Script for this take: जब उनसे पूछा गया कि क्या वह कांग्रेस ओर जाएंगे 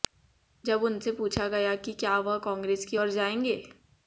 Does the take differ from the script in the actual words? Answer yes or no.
yes